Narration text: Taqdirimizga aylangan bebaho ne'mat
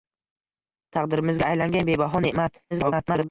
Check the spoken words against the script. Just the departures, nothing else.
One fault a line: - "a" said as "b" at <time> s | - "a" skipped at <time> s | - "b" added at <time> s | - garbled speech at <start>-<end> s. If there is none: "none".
- garbled speech at 2.7-3.3 s